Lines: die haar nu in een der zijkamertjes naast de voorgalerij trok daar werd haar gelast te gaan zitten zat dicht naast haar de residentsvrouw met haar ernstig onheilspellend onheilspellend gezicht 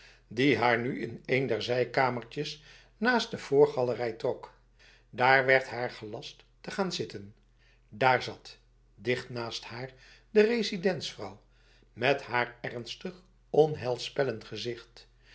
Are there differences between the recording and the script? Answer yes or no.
yes